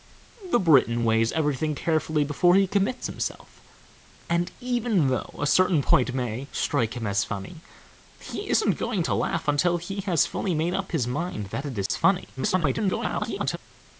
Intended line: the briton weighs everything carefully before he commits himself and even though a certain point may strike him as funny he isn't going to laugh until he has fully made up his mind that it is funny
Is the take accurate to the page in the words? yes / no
no